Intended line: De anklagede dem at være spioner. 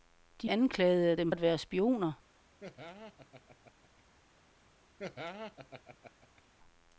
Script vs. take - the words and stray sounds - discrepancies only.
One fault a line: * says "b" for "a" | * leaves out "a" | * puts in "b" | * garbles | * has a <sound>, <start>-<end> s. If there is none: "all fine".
* has a laugh, 2.6-4.0 s
* has a laugh, 5.0-6.4 s